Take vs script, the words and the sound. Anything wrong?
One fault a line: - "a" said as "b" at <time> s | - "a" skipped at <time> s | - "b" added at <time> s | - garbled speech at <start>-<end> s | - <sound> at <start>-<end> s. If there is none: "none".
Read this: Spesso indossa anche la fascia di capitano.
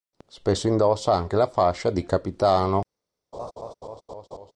- laugh at 3.3-4.5 s